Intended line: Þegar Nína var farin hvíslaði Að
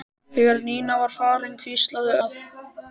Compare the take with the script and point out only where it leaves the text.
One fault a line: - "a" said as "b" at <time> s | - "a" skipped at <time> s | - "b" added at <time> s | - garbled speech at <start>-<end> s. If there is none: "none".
none